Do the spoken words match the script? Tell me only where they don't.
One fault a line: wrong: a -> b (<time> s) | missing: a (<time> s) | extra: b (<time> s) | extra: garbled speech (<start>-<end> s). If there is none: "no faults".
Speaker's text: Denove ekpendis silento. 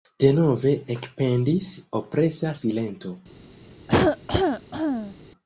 extra: opresa (2.0 s)